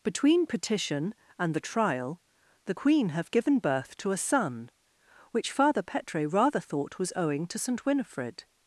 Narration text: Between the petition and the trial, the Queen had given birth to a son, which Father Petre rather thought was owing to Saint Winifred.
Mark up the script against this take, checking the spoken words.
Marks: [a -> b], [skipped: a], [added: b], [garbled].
Between [skipped: the] petition and the trial, the Queen [had -> have] given birth to a son, which Father Petre rather thought was owing to Saint Winifred.